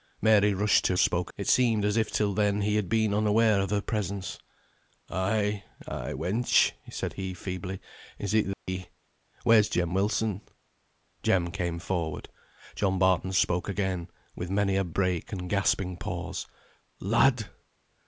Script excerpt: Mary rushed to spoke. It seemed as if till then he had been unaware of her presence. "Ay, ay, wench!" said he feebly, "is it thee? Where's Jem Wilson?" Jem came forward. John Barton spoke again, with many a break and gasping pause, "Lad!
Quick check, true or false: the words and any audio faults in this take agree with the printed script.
false